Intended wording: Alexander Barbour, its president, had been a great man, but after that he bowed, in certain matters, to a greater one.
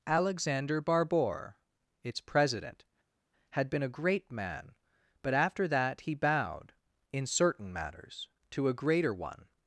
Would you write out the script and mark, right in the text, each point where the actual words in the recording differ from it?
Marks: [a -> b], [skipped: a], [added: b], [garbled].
Alexander Barbour, its president, had been a great man, but after that he bowed, in certain matters, to a greater one.